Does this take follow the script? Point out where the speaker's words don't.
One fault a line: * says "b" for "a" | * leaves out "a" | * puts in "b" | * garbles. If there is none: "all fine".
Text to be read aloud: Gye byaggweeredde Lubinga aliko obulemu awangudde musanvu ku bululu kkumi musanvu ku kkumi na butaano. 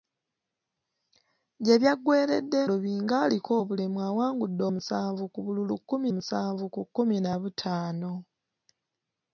all fine